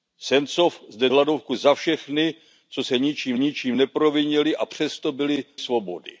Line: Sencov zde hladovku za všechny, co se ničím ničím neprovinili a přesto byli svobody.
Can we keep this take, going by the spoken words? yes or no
yes